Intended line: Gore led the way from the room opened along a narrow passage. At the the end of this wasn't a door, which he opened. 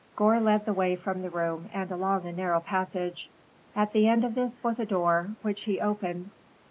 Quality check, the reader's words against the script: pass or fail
fail